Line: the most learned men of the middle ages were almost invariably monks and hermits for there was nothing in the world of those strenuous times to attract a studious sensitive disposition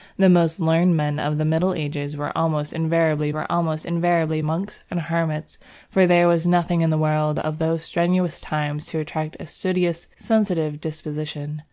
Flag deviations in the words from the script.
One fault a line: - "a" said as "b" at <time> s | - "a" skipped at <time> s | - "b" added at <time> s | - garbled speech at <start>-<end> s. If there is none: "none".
- "were almost invariably" added at 3.3 s